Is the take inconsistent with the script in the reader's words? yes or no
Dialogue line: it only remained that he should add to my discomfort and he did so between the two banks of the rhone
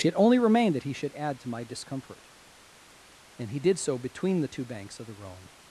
no